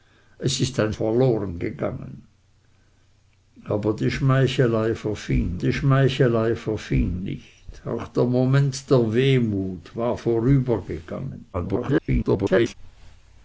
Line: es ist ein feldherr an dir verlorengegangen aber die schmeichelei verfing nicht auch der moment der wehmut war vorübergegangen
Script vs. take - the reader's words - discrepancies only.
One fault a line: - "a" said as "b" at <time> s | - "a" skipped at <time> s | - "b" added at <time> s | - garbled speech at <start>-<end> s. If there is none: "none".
- "feldherr an dir verlorengegangen aber" said as "verlorengegangen aber die schmeichelei verfing" at 0.9 s
- garbled speech at 11.5-12.7 s